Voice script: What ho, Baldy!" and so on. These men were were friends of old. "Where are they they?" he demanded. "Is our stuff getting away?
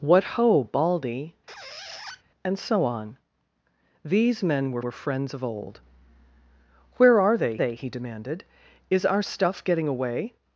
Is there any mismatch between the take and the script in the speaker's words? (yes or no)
no